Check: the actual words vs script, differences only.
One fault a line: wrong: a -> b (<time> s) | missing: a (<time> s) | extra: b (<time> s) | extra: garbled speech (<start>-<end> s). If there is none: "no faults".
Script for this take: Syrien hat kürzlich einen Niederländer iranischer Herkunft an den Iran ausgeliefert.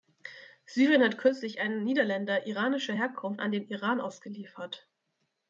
no faults